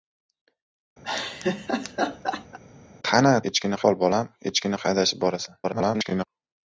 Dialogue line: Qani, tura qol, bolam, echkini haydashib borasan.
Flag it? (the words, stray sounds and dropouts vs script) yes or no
yes